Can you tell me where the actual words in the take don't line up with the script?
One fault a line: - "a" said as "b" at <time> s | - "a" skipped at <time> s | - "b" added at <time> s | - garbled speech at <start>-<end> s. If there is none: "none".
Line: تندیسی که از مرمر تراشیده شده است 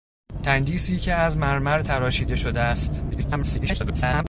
- garbled speech at 3.1-4.2 s